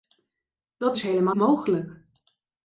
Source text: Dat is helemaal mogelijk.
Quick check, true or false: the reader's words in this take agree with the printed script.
true